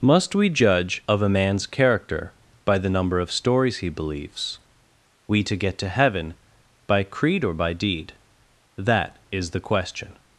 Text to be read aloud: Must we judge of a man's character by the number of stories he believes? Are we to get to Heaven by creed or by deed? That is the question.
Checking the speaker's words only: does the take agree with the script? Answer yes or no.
no